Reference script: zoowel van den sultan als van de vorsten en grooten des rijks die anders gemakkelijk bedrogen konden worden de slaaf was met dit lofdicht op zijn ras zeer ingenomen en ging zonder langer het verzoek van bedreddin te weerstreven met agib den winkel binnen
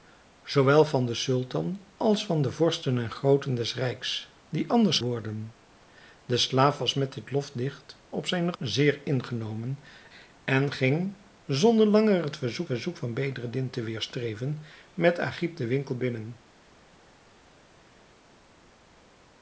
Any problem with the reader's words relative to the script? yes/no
yes